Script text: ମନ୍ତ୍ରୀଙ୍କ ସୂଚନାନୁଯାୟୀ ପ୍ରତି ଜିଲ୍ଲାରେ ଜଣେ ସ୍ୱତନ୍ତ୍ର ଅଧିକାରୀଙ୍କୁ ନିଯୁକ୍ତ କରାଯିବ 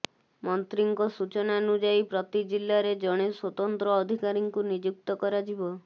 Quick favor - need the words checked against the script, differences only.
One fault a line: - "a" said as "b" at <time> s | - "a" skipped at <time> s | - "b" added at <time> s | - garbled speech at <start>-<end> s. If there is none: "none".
none